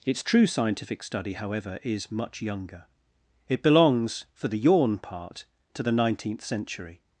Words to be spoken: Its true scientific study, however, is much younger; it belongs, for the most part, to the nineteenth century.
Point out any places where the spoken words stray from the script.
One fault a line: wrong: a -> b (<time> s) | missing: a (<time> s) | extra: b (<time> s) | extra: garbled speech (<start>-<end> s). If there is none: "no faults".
wrong: most -> yawn (4.6 s)